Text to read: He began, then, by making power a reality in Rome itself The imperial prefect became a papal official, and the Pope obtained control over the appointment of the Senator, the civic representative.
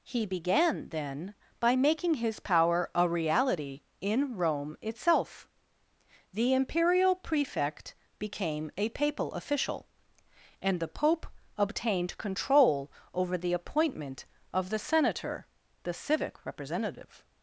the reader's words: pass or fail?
fail